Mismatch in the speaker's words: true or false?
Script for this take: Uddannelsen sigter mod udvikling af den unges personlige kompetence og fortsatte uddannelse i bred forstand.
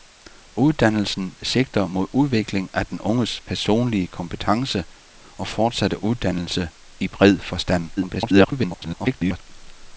true